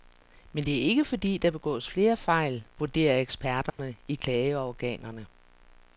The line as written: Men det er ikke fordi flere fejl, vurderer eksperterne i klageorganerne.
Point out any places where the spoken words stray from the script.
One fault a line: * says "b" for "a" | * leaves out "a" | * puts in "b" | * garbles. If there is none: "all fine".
* puts in "der begås"